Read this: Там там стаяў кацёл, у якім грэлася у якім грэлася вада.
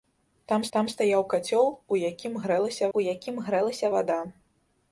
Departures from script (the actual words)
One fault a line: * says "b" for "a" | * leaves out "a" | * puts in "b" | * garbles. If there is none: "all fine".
all fine